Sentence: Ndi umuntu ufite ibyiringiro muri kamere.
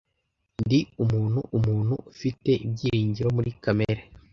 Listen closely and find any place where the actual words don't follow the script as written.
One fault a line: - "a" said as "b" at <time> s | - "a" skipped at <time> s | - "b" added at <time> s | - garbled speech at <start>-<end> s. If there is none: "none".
- "umuntu" added at 1.6 s